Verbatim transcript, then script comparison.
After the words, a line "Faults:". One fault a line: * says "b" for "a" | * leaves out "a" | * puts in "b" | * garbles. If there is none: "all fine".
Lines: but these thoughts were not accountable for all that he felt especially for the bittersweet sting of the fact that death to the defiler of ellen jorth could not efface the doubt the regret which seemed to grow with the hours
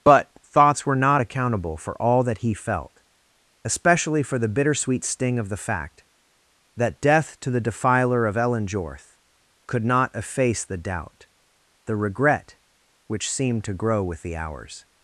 but thoughts were not accountable for all that he felt especially for the bittersweet sting of the fact that death to the defiler of ellen jorth could not efface the doubt the regret which seemed to grow with the hours
Faults:
* leaves out "these"